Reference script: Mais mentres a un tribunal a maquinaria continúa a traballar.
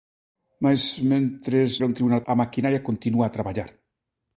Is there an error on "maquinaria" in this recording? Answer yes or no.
no